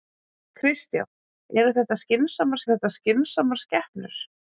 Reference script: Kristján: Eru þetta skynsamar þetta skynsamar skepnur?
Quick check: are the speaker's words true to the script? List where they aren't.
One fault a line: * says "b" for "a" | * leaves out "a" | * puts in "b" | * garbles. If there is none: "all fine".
all fine